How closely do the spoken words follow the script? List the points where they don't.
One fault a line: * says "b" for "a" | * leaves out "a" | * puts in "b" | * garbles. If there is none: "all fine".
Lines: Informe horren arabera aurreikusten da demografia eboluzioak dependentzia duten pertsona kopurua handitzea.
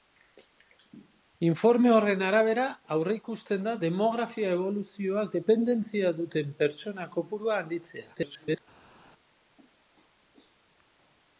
* garbles